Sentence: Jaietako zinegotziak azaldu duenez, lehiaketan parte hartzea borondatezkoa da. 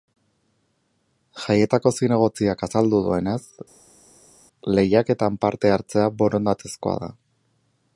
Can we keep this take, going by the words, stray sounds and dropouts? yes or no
yes